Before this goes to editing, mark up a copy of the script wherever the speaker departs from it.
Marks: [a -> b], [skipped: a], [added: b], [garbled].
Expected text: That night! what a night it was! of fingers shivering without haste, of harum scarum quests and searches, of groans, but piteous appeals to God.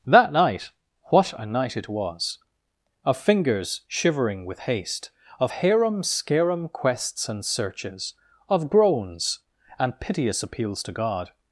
That night! what a night it was! of fingers shivering [without -> with] haste, of harum scarum quests and searches, of groans, [but -> and] piteous appeals to God.